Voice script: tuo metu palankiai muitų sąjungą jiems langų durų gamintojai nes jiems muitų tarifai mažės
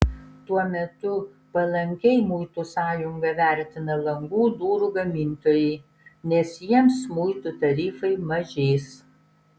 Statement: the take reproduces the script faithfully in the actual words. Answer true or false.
false